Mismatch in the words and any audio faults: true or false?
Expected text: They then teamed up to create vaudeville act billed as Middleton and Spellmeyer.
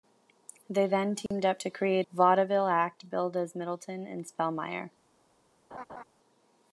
true